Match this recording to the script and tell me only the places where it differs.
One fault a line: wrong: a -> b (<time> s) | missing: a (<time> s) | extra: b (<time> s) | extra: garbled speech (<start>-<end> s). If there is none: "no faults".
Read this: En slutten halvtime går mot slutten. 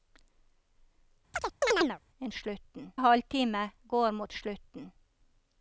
no faults